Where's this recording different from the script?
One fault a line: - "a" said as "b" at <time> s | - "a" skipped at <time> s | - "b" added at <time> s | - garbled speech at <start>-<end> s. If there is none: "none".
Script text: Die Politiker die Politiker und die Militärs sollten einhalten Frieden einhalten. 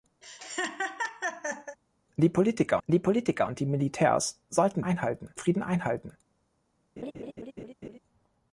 none